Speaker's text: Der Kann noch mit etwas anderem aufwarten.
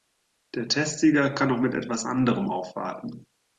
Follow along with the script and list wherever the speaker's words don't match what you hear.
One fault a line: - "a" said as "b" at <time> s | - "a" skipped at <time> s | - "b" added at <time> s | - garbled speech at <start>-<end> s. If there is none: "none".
- "Testsieger" added at 0.7 s